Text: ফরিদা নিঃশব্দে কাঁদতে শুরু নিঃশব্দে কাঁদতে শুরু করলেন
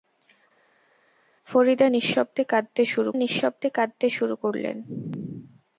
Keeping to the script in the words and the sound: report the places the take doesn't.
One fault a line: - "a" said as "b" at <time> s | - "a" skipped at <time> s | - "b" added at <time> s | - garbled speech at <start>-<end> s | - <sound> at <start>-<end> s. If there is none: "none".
none